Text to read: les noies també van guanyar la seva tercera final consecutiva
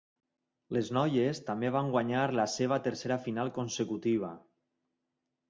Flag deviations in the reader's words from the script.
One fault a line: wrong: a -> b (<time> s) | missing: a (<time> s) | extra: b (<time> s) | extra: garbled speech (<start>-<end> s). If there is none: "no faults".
no faults